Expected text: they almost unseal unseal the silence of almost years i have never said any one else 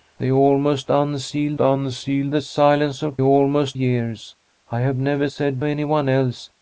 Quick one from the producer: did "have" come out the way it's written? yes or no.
yes